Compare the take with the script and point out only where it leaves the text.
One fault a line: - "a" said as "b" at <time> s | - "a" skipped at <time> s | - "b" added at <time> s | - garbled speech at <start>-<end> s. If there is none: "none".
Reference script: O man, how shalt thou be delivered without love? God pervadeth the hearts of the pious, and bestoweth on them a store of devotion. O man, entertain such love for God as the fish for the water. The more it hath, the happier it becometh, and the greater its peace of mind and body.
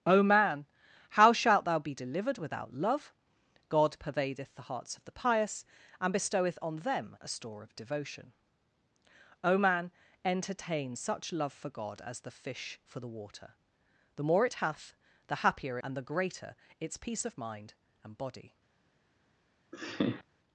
- "it becometh" skipped at 15.8 s